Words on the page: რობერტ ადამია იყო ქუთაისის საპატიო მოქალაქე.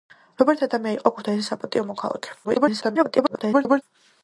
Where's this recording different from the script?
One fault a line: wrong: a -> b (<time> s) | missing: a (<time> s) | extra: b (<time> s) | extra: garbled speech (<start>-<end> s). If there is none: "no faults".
extra: garbled speech (2.4-3.8 s)